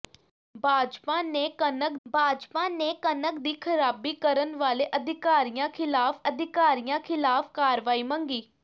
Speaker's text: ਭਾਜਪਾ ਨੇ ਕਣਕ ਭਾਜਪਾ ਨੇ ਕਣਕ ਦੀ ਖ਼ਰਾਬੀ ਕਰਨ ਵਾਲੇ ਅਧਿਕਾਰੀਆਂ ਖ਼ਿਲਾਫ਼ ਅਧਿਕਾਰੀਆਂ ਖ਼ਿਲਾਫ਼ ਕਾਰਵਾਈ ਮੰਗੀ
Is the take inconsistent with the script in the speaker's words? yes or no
no